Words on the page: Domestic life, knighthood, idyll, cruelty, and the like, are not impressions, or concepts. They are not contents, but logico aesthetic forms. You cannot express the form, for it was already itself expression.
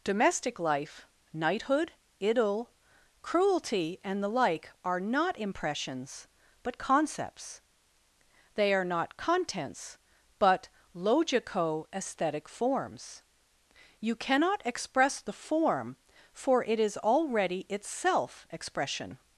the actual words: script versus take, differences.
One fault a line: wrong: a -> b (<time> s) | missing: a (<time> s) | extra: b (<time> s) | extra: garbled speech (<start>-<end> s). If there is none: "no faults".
wrong: or -> but (6.6 s)
wrong: was -> is (16.8 s)